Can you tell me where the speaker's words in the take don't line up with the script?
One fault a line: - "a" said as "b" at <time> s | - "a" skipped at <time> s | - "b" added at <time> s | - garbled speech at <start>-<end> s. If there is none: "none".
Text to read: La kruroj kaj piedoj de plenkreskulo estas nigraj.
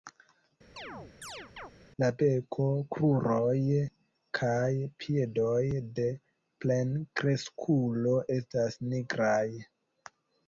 - "beko" added at 2.2 s